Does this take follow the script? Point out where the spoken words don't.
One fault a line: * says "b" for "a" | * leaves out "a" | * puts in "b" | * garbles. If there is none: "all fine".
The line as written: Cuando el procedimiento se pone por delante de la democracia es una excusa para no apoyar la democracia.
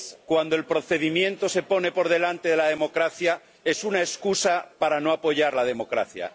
all fine